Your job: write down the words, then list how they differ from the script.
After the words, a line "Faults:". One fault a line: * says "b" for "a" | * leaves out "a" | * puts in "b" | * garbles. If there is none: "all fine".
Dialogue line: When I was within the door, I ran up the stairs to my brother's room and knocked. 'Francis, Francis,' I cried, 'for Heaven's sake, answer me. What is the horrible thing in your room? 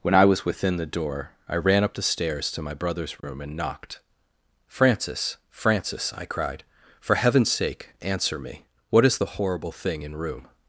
When I was within the door, I ran up the stairs to my brother's room and knocked. 'Francis, Francis,' I cried, 'for Heaven's sake, answer me. What is the horrible thing in room?
Faults:
* leaves out "your"